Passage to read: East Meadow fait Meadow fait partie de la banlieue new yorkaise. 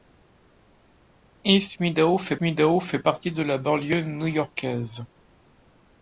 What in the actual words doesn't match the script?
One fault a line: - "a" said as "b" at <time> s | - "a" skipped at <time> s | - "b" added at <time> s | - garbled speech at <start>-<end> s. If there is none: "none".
none